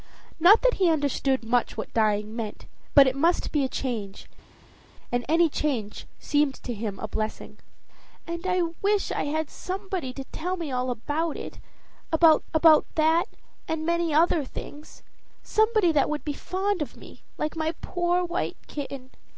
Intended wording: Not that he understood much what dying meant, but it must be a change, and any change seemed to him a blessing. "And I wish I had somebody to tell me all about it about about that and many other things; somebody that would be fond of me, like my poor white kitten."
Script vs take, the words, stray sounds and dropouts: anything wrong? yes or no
no